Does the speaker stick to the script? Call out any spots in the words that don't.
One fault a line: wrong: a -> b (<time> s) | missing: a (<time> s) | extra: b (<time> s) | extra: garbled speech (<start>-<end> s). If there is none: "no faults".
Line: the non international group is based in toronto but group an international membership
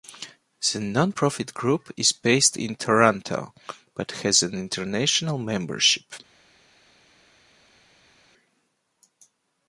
wrong: international -> profit (1.1 s)
wrong: group -> has (4.2 s)